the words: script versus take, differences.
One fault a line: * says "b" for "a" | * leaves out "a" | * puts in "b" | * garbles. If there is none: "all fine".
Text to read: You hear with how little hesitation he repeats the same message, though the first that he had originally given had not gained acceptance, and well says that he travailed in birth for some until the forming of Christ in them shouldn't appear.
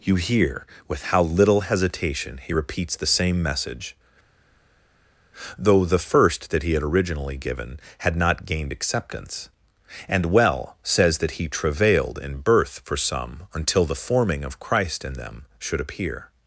* says "should" for "shouldn't"